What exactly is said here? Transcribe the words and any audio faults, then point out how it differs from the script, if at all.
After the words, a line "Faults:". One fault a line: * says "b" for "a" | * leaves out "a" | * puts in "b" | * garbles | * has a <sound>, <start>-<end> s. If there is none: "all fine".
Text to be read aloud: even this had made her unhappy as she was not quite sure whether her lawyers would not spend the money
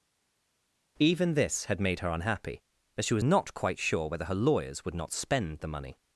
even this had made her unhappy as she was not quite sure whether her lawyers would not spend the money
Faults:
all fine